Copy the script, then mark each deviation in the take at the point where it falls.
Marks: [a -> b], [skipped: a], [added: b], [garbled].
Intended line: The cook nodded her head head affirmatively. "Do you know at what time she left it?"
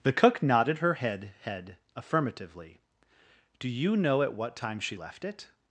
The cook nodded her head head affirmatively. "Do you know at what time she left it?"